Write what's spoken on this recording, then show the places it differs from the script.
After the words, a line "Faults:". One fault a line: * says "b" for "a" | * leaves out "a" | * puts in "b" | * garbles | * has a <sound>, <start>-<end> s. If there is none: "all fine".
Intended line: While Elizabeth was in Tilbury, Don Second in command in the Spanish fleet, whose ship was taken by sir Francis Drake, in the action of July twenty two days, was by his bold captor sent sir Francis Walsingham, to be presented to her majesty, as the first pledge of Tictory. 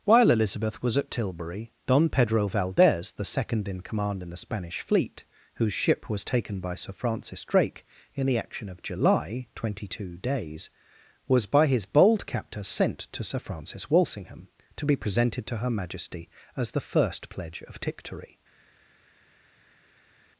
While Elizabeth was at Tilbury, Don Pedro Valdez, the second in command in the Spanish fleet, whose ship was taken by sir Francis Drake, in the action of July twenty two days, was by his bold captor sent to sir Francis Walsingham, to be presented to her majesty, as the first pledge of Tictory.
Faults:
* says "at" for "in"
* puts in "Pedro Valdez the"
* puts in "to"